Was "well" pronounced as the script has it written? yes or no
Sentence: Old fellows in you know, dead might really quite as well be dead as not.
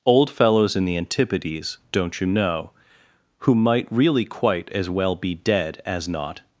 yes